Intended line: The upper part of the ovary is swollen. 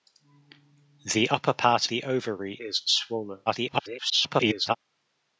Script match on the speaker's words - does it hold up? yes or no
no